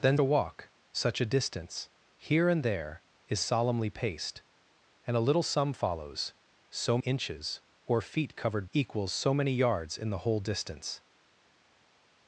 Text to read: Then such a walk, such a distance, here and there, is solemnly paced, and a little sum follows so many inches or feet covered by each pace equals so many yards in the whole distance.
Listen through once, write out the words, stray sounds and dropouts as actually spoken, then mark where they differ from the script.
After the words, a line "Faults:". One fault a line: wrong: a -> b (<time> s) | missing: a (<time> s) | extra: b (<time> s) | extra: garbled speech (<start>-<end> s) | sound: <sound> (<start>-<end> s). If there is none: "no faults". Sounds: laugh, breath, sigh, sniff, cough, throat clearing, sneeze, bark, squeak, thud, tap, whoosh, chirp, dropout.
Then a walk, such a distance, here and there, is solemnly paced, and a little sum follows so inches or feet covered equals so many yards in the whole distance.
Faults:
missing: such (0.2 s)
missing: many (7.0 s)
missing: by each pace (8.7 s)